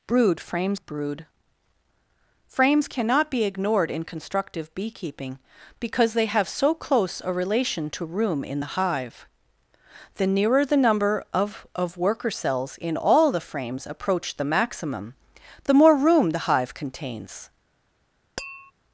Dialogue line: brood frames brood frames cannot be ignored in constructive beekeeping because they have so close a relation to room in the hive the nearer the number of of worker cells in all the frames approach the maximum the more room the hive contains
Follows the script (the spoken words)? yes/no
yes